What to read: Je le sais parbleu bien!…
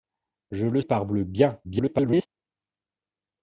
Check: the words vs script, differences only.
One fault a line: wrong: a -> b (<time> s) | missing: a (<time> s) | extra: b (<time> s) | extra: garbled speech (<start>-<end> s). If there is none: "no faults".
missing: sais (0.8 s)
extra: garbled speech (1.6-2.3 s)